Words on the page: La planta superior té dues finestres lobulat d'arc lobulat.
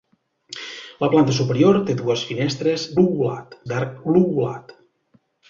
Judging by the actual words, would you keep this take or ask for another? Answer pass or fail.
pass